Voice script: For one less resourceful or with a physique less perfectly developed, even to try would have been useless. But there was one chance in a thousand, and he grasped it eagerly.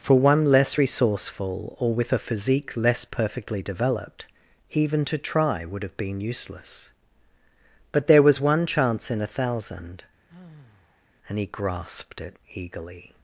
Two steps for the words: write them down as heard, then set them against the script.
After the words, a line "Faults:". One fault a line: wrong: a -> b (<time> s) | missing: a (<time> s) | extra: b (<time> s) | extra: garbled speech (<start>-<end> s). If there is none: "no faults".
For one less resourceful or with a physique less perfectly developed, even to try would have been useless. But there was one chance in a thousand, and he grasped it eagerly.
Faults:
no faults